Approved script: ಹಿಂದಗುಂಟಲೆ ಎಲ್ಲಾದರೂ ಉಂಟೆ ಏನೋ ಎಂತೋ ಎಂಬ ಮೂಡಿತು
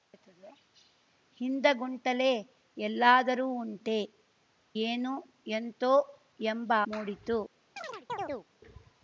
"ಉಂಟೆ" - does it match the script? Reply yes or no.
yes